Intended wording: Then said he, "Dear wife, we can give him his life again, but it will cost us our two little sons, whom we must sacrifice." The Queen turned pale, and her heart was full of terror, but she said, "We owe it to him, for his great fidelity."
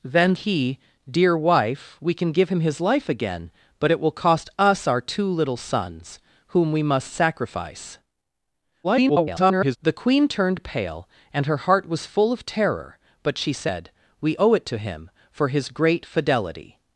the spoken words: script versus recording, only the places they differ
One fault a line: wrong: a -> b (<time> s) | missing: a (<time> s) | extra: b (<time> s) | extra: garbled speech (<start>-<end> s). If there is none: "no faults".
missing: said (0.3 s)
extra: garbled speech (8.8-9.8 s)